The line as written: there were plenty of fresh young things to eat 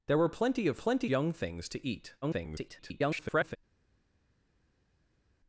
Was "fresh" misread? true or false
true